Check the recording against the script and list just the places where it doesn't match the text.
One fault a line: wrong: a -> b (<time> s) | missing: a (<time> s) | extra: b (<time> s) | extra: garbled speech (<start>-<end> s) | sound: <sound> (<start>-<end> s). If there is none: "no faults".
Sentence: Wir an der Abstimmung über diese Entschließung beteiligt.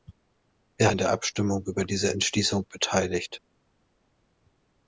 no faults